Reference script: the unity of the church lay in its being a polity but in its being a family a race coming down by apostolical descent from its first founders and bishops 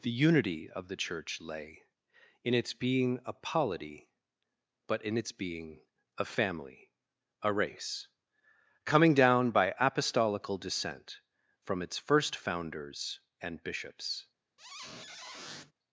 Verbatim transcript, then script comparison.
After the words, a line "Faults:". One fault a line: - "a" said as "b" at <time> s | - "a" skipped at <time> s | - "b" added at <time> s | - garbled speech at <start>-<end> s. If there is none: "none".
the unity of the church lay in its being a polity but in its being a family a race coming down by apostolical descent from its first founders and bishops
Faults:
none